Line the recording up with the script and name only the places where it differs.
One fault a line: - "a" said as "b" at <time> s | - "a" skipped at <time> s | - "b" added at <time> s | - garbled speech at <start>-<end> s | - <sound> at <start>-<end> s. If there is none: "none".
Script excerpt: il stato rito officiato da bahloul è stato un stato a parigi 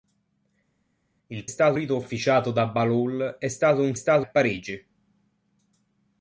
none